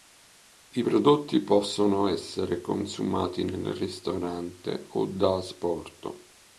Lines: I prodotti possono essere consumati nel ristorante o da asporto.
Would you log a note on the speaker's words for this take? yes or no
no